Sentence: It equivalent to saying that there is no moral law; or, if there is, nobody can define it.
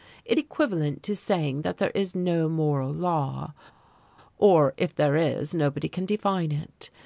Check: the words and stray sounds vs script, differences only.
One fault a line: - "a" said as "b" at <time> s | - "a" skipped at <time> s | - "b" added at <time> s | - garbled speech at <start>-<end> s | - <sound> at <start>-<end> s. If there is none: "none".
none